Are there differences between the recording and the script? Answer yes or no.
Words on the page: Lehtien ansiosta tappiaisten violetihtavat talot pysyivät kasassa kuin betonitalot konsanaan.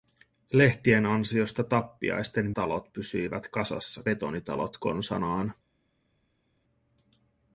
yes